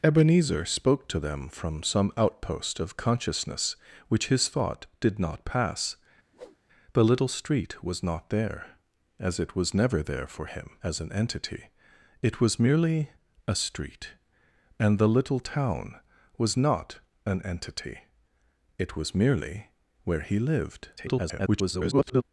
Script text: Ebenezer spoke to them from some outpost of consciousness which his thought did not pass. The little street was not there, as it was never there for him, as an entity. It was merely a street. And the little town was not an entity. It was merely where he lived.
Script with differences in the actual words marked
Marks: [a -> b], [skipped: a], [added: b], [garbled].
Ebenezer spoke to them from some outpost of consciousness which his thought did not pass. The little street was not there, as it was never there for him, as an entity. It was merely a street. And the little town was not an entity. It was merely where he lived. [garbled]